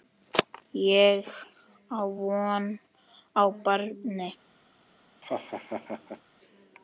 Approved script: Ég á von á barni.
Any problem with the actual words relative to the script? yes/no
no